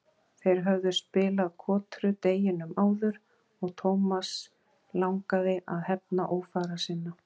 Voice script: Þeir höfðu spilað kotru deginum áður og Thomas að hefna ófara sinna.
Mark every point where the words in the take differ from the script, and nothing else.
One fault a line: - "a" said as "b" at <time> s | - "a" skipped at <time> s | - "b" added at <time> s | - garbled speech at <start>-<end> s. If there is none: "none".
- "langaði" added at 5.0 s